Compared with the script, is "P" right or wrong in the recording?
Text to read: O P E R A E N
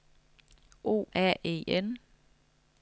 wrong